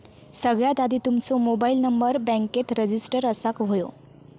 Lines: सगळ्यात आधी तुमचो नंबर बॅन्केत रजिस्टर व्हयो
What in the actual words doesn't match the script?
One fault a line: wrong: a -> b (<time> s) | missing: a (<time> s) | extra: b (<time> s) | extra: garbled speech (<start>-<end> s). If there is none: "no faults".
extra: मोबाईल (1.4 s)
extra: असाक (3.2 s)